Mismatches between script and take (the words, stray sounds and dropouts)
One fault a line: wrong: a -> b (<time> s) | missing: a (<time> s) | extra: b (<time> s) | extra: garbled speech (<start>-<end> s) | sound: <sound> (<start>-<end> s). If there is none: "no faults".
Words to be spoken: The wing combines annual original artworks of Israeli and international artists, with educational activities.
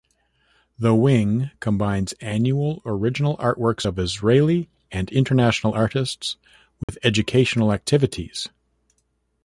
sound: dropout (6.8-6.9 s)